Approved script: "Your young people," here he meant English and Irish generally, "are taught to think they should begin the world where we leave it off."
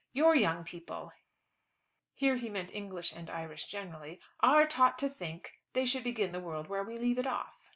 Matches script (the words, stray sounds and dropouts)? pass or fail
pass